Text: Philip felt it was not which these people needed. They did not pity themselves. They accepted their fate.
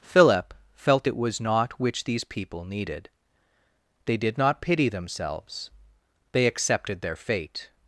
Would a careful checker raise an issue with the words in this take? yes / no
no